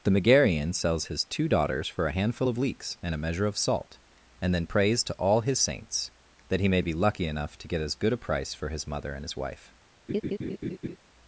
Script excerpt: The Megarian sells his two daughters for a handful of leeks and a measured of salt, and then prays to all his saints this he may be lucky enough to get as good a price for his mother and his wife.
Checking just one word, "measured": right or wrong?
wrong